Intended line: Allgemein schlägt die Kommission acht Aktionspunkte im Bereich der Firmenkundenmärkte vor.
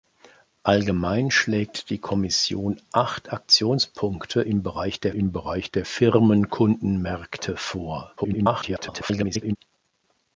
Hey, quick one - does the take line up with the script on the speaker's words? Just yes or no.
no